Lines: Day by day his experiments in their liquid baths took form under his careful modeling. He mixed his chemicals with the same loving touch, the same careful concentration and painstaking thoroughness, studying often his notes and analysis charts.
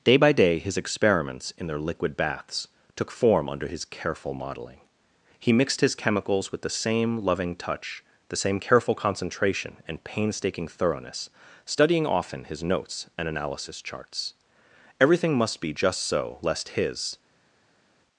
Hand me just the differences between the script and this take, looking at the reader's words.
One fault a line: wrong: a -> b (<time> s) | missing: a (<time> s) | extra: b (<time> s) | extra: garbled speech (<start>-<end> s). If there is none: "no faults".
extra: Everything must be just so lest his (15.0 s)